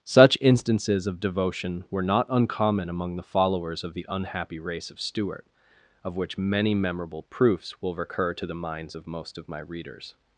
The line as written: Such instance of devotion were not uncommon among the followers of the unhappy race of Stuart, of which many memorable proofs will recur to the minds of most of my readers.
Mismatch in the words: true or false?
true